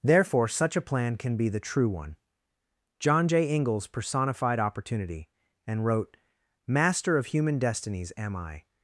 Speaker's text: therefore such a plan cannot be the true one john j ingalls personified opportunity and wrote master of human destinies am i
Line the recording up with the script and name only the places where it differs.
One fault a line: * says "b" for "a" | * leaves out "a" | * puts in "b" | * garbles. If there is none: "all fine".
* says "can" for "cannot"